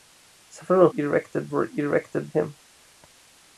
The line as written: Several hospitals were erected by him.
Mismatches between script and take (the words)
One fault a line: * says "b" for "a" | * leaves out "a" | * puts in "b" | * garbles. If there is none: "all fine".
* says "erected" for "hospitals"
* leaves out "by"